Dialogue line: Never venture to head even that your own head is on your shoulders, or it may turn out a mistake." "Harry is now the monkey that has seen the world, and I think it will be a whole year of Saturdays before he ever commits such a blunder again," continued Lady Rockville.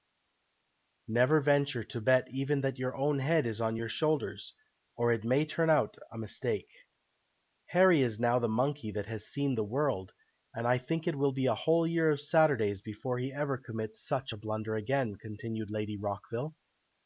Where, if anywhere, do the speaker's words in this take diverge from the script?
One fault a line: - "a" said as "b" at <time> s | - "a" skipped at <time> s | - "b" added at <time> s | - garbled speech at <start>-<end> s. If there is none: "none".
- "head" said as "bet" at 2.0 s